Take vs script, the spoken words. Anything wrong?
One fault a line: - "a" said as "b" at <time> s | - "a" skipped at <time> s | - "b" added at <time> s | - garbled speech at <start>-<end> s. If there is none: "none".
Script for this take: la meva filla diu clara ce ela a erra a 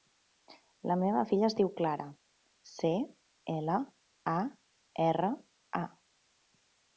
- "es" added at 1.5 s